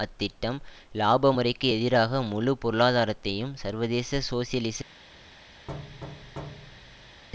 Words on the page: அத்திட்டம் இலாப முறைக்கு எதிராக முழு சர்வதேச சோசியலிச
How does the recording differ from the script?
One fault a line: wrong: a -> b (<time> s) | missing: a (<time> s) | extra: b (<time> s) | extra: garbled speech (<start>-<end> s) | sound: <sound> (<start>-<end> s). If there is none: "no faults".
extra: பொருளாதாரத்தையும் (2.6 s)
sound: thud (5.7-7.2 s)